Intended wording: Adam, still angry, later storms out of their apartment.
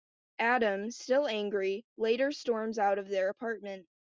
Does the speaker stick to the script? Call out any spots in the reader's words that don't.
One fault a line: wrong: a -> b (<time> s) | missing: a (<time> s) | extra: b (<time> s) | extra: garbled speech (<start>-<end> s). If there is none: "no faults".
no faults